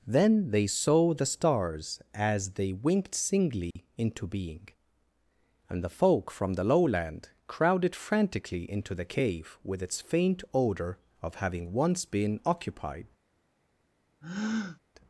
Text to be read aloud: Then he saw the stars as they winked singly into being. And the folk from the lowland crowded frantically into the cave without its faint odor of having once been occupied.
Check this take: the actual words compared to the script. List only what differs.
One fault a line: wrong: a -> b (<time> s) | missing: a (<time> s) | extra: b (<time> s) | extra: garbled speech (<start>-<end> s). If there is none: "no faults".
wrong: he -> they (0.5 s)
wrong: without -> with (9.6 s)